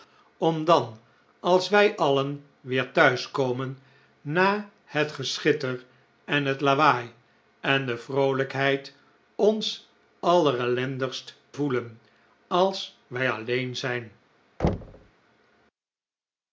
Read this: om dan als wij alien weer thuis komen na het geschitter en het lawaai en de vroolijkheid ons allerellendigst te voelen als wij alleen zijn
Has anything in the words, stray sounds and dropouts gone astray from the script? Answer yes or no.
yes